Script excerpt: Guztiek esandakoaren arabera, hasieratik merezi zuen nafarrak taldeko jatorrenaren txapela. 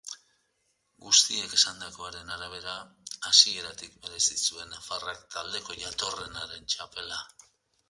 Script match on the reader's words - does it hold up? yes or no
yes